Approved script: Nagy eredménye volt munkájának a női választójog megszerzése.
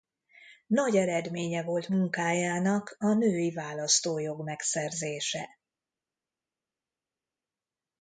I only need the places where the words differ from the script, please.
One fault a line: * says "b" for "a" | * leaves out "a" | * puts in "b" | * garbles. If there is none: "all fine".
all fine